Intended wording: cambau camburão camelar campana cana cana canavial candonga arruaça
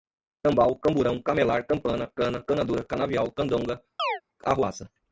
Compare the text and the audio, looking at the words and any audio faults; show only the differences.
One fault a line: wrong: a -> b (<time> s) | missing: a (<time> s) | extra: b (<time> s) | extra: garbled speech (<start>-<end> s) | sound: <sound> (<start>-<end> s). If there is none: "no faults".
extra: dura (2.6 s)
sound: chirp (4.0-4.2 s)